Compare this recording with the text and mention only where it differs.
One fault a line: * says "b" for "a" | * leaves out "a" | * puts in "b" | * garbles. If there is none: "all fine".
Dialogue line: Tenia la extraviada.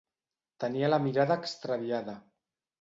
* puts in "mirada"